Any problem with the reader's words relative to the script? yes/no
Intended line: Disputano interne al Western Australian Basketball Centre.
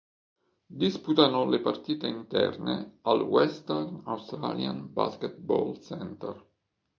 yes